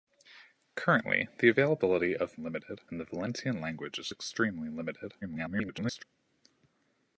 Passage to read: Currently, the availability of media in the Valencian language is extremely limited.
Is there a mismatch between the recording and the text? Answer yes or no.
yes